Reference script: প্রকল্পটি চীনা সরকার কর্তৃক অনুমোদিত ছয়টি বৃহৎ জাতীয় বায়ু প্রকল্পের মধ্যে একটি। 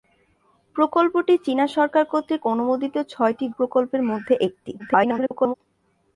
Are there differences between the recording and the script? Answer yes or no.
yes